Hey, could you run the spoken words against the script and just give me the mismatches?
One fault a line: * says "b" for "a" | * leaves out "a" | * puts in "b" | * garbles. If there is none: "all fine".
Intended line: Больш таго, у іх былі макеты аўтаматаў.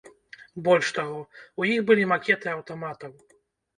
all fine